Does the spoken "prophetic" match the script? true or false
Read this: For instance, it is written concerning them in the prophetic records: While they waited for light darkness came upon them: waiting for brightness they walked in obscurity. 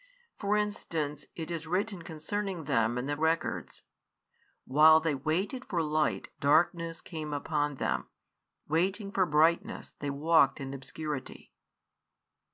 false